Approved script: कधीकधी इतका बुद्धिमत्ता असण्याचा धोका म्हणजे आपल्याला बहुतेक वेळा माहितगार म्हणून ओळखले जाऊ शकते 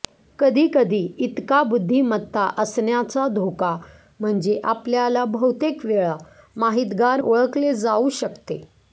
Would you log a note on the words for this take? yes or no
yes